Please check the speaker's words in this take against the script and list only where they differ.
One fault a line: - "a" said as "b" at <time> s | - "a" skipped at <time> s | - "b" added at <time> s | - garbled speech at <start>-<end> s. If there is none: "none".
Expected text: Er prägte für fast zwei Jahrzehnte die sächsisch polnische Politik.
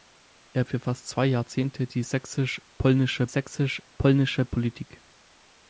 - "prägte" skipped at 0.6 s
- "sächsisch polnische" added at 3.3 s